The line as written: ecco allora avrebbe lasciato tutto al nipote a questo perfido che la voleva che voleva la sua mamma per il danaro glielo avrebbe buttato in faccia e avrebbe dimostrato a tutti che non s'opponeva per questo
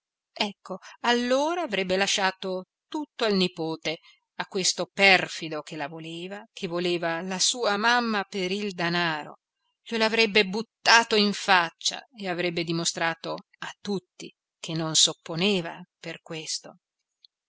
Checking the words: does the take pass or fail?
pass